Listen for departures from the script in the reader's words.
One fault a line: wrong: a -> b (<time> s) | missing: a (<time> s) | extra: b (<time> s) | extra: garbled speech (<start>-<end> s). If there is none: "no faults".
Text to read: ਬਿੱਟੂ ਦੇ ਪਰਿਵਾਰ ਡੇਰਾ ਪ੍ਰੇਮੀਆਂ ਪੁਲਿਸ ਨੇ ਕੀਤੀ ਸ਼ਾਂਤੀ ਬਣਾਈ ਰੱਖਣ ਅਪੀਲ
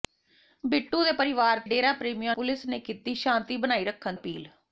no faults